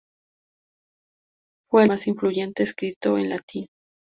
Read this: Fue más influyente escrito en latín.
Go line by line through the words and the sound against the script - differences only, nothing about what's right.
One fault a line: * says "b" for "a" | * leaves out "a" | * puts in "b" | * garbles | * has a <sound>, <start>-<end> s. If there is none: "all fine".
all fine